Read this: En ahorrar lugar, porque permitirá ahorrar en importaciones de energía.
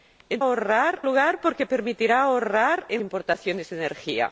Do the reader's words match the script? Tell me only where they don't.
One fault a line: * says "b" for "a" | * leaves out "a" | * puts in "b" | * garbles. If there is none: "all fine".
all fine